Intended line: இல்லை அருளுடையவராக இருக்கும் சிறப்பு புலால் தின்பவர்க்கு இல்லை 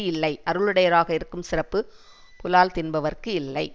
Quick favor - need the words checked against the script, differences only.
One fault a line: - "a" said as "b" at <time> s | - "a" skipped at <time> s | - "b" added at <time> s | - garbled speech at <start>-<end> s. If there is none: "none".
none